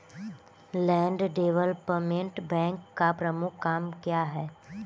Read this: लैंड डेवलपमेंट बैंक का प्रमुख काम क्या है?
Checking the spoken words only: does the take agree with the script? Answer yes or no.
yes